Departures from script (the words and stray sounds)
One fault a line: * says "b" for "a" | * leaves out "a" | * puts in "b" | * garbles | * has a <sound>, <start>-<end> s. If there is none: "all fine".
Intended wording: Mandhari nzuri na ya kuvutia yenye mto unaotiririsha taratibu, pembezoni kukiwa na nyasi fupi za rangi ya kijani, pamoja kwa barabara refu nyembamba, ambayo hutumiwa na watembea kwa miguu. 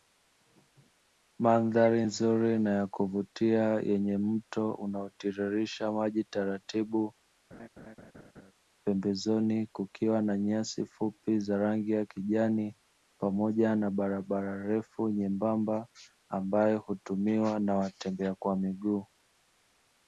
* puts in "maji"
* has a laugh, 7.5-8.5 s
* says "na" for "kwa"